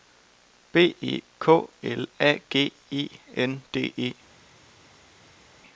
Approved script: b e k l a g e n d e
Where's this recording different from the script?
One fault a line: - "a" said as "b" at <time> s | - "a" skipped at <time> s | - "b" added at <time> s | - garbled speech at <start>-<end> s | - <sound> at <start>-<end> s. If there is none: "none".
none